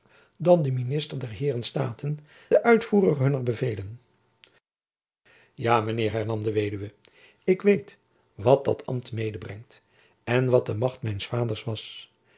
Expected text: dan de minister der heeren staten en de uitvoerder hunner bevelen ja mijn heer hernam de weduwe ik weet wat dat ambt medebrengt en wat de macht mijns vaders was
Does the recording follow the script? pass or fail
fail